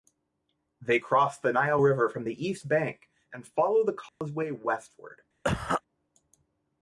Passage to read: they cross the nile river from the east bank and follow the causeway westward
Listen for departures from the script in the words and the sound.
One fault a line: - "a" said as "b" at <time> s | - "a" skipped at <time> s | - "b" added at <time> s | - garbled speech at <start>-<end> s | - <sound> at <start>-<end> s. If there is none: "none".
- dropout at 4.1-4.2 s
- cough at 5.4-5.8 s